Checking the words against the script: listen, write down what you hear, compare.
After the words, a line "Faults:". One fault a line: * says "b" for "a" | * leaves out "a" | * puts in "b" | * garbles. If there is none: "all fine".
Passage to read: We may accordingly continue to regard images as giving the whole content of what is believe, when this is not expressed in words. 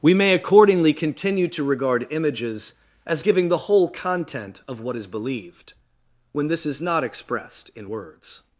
We may accordingly continue to regard images as giving the whole content of what is believed, when this is not expressed in words.
Faults:
* says "believed" for "believe"